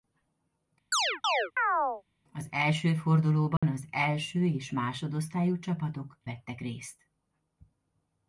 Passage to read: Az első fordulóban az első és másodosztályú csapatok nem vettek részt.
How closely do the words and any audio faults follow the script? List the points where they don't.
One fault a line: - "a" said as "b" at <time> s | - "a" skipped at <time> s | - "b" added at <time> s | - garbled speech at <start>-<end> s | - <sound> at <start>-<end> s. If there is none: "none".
- chirp at 0.9-2.0 s
- dropout at 3.6-3.6 s
- "nem" skipped at 6.2 s